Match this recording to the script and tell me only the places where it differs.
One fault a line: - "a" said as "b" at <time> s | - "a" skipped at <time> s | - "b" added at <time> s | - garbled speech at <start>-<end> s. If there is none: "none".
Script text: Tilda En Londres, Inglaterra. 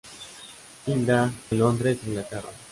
none